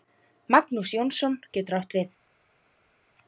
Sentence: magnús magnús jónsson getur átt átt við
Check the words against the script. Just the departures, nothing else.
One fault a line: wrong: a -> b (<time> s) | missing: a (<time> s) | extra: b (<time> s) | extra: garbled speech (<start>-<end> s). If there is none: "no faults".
missing: magnús (0.9 s)
missing: átt (2.0 s)